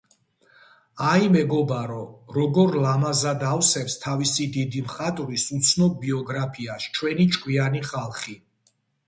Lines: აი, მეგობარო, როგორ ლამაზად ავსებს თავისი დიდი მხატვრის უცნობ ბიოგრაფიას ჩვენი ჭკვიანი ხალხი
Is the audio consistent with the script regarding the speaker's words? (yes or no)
yes